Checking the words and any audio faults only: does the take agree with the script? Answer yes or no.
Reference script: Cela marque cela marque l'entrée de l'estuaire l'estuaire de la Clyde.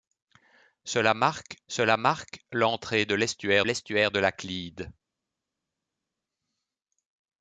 yes